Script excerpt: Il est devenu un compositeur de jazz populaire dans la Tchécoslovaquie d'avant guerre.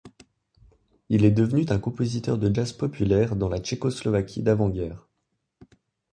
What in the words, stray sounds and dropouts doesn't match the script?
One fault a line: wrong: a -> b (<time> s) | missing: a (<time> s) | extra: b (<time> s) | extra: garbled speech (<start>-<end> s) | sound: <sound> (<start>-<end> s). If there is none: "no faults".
no faults